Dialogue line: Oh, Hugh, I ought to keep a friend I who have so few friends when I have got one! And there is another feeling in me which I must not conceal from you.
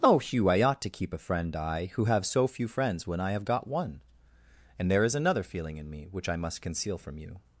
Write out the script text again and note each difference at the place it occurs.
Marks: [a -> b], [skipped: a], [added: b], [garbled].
Oh, Hugh, I ought to keep a friend I who have so few friends when I have got one! And there is another feeling in me which I must [skipped: not] conceal from you.